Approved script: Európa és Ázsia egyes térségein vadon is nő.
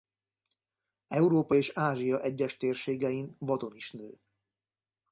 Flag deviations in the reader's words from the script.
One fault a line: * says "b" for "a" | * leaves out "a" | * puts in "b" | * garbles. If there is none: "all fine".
all fine